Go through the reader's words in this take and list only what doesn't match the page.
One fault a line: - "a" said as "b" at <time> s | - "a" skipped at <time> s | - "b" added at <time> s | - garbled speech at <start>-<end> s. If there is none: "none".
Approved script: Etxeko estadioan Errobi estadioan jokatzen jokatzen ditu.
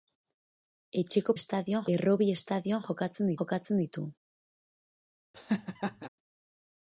none